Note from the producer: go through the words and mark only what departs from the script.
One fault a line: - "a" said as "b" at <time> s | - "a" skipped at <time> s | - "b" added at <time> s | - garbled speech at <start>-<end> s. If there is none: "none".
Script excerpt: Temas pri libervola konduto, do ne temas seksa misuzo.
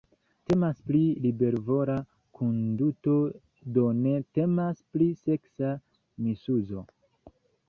- "pri" added at 5.0 s